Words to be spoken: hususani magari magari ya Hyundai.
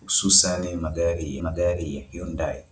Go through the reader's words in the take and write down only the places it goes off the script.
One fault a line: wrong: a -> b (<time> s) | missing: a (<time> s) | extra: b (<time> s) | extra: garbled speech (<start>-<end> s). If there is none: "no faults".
no faults